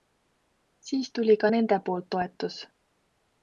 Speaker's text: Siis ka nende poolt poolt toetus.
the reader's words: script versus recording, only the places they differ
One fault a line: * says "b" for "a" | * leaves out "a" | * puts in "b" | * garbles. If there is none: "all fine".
* puts in "tuli"
* leaves out "poolt"